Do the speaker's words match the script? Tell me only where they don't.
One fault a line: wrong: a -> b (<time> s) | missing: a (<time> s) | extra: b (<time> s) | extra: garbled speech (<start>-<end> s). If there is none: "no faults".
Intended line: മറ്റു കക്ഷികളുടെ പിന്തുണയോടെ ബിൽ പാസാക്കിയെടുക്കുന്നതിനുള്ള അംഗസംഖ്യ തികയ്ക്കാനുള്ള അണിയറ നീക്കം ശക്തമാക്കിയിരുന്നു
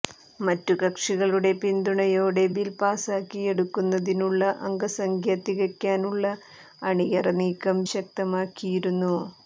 no faults